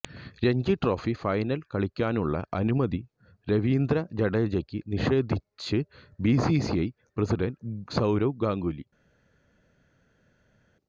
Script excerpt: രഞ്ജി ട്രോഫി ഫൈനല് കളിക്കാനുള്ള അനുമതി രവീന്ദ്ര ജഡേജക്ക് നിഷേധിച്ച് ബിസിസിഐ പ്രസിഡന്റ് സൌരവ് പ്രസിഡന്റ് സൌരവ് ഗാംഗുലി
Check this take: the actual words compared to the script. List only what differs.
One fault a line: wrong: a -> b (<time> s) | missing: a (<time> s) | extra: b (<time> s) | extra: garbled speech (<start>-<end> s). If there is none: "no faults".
missing: പ്രസിഡന്റ് സൌരവ് (8.4 s)